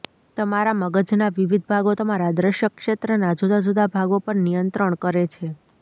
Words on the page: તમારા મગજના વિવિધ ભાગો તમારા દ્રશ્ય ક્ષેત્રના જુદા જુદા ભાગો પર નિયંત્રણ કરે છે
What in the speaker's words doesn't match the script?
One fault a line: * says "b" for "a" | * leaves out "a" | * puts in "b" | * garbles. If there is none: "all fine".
all fine